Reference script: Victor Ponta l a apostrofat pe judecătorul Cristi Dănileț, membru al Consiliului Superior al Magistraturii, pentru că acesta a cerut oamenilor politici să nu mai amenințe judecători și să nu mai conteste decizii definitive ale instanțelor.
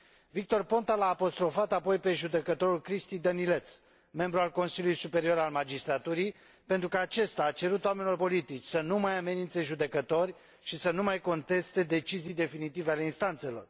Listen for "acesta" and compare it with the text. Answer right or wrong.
right